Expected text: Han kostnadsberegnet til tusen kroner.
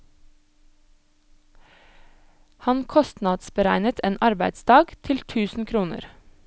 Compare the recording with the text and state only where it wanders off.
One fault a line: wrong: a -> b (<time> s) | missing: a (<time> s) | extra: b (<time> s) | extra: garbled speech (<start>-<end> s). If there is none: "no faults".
extra: en arbeidsdag (4.0 s)